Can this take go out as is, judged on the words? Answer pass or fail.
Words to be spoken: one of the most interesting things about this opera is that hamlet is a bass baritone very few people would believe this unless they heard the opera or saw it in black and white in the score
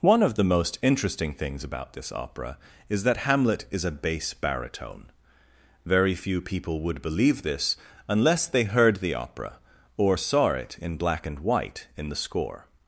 pass